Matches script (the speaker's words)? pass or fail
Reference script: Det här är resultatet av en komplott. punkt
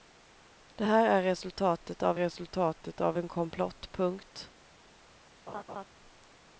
fail